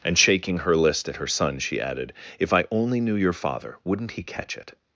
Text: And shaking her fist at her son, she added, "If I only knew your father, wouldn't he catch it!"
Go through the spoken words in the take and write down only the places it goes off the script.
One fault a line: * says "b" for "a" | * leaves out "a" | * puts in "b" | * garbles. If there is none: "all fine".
* says "list" for "fist"